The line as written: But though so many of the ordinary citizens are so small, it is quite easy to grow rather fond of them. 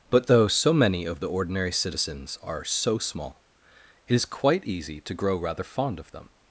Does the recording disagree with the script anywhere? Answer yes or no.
no